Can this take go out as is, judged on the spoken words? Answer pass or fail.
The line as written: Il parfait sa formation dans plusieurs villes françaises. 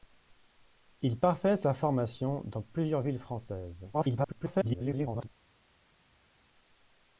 fail